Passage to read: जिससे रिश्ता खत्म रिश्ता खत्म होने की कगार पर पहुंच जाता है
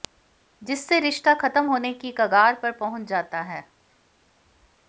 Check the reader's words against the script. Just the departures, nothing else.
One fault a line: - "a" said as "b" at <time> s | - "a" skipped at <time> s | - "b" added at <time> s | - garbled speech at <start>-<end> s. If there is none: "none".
- "रिश्ता खत्म" skipped at 1.6 s